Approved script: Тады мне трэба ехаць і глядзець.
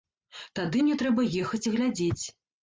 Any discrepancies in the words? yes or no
no